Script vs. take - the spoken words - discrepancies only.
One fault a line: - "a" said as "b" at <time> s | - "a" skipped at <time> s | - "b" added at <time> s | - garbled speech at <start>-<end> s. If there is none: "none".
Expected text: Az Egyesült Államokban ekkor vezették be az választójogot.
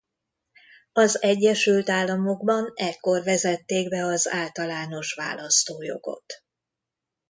- "általános" added at 4.3 s